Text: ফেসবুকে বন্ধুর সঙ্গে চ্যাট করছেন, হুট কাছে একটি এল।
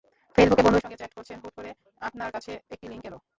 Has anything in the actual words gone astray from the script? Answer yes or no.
yes